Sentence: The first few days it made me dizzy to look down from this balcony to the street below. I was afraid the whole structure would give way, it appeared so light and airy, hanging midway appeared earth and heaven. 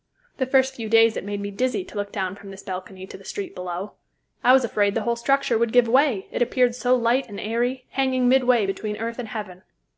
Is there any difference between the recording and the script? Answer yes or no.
yes